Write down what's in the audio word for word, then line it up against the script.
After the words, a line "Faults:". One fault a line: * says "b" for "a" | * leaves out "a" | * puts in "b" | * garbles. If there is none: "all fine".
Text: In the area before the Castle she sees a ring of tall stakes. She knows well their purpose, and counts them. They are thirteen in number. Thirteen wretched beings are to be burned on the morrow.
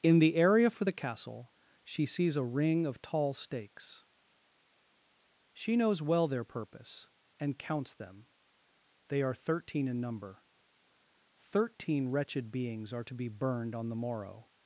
In the area for the Castle she sees a ring of tall stakes. She knows well their purpose, and counts them. They are thirteen in number. Thirteen wretched beings are to be burned on the morrow.
Faults:
* says "for" for "before"